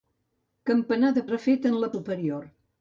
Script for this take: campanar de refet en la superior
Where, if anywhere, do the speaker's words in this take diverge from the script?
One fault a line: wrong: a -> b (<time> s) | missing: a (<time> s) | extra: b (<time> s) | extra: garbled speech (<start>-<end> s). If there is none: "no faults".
no faults